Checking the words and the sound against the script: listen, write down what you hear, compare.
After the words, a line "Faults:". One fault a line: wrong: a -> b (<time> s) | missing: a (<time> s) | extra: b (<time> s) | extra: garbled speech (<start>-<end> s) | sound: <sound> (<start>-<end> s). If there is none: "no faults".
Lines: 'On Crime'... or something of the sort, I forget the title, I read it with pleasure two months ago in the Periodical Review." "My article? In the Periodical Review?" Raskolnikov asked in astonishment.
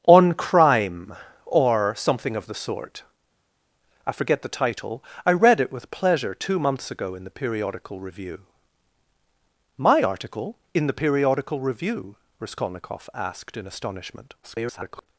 'On Crime'... or something of the sort, I forget the title, I read it with pleasure two months ago in the Periodical Review." "My article? In the Periodical Review?" Raskolnikov asked in astonishment. [garbled]
Faults:
extra: garbled speech (14.4-15.1 s)